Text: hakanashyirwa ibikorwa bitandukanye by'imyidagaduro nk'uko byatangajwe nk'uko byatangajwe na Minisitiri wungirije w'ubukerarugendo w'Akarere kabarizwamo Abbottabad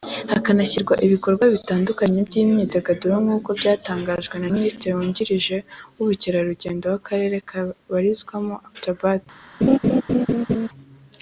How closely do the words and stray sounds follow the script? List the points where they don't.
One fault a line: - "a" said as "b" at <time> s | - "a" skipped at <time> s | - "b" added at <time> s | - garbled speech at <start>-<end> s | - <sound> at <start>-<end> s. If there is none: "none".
- "nk'uko byatangajwe" skipped at 4.4 s
- laugh at 9.6-10.7 s